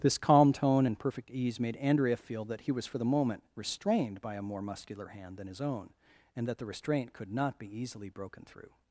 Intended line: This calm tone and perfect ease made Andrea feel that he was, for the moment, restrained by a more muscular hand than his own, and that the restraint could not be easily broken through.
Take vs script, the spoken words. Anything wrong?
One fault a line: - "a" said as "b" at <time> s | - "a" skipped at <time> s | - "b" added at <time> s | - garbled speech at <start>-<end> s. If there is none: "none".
none